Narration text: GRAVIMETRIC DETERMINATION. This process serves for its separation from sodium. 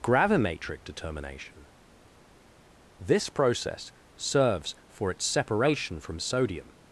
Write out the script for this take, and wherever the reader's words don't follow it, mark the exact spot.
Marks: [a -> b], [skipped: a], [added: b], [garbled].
GRAVIMETRIC DETERMINATION. This process serves for its separation from sodium.